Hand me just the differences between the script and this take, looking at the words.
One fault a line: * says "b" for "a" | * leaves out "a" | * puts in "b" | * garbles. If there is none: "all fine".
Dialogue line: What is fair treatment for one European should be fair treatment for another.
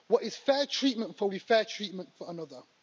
* leaves out "one European should"